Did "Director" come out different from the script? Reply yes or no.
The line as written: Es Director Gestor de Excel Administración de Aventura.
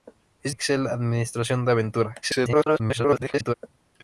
yes